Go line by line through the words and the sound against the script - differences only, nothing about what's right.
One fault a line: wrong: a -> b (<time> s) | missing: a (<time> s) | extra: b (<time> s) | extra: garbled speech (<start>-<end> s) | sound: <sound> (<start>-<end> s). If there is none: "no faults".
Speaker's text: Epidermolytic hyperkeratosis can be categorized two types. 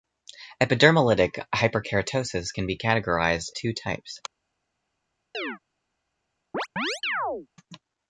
sound: chirp (5.3-5.6 s)
sound: chirp (6.5-7.5 s)